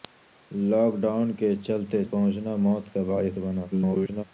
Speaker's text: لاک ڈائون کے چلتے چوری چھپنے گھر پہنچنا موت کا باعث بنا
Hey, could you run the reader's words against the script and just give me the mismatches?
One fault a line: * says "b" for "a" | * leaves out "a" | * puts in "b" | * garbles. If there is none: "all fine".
* leaves out "چوری چھپنے گھر"
* garbles